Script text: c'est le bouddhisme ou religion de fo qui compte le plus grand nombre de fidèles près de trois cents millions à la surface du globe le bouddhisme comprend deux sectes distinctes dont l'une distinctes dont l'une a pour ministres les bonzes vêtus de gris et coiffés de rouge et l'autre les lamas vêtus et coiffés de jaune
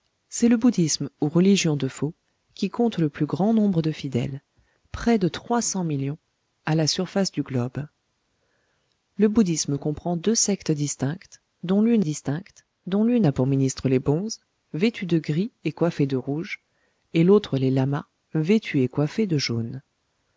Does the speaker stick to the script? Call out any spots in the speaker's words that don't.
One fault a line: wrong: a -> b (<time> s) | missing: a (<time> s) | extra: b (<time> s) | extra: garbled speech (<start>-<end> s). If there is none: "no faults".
no faults